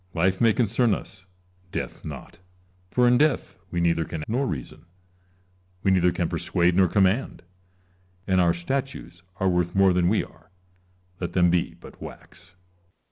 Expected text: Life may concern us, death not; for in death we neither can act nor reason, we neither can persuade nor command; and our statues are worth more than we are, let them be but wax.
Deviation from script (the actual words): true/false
true